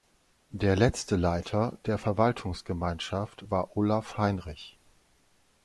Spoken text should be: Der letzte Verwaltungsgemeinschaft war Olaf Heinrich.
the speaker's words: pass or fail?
fail